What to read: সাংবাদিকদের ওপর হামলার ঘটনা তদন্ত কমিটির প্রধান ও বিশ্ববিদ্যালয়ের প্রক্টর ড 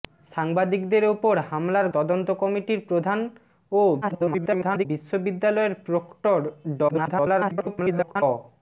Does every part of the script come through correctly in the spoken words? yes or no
no